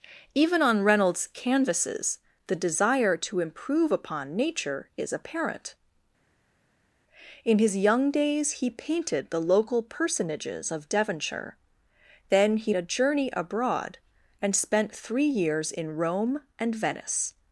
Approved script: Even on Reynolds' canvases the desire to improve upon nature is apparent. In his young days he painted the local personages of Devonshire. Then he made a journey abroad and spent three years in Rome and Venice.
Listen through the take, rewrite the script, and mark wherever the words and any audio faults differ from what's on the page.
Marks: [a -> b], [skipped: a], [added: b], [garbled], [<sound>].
Even on Reynolds' canvases the desire to improve upon nature is apparent. In his young days he painted the local personages of Devonshire. Then he [skipped: made] a journey abroad and spent three years in Rome and Venice.